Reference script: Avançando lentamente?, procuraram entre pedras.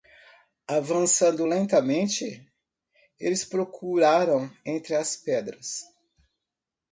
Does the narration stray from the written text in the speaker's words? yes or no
yes